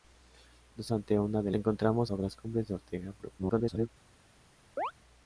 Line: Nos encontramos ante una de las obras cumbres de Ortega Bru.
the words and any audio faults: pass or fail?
fail